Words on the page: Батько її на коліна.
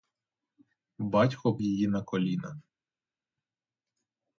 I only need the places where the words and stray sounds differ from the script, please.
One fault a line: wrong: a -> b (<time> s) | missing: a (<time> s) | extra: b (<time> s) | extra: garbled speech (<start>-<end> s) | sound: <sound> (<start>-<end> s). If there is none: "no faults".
no faults